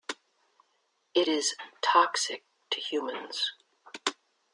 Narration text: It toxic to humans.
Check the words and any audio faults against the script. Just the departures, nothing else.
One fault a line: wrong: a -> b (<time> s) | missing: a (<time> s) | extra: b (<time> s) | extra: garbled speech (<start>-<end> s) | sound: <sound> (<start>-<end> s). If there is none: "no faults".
extra: is (1.3 s)